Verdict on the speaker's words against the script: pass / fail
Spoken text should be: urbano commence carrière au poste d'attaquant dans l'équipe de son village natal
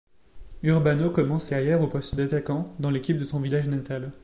pass